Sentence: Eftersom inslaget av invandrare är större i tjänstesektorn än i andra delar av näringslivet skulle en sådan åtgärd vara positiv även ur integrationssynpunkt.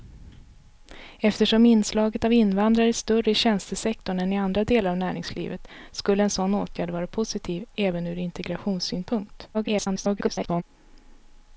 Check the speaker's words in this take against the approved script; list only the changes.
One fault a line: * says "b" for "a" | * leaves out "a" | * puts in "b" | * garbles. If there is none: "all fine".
* garbles